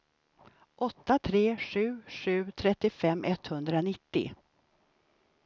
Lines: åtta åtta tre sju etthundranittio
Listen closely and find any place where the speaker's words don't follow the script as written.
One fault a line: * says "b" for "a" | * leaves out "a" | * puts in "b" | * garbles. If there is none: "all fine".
* leaves out "åtta"
* puts in "sju trettiofem"